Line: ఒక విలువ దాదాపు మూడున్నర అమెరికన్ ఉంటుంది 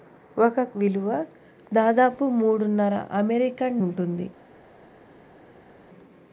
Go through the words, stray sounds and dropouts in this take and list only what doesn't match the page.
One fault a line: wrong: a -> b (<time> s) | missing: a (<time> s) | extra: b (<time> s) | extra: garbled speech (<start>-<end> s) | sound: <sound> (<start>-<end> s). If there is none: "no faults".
no faults